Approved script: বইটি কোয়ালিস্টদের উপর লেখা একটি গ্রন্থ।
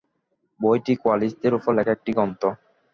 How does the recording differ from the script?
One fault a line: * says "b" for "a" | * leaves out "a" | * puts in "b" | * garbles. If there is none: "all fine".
all fine